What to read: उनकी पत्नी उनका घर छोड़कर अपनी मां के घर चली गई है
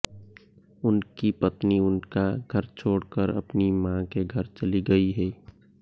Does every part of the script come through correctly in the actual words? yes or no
yes